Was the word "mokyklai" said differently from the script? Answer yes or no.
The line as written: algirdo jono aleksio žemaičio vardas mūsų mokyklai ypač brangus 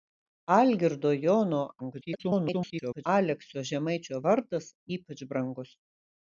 yes